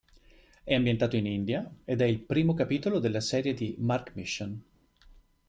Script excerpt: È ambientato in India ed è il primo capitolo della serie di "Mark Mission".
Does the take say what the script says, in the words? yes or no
yes